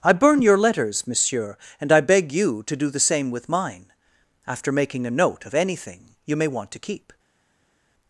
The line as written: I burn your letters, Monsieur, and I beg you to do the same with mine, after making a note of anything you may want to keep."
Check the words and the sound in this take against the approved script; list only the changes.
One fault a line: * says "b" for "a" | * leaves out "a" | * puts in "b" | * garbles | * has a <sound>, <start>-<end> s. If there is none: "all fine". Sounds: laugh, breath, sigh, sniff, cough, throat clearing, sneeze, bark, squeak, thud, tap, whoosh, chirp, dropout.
all fine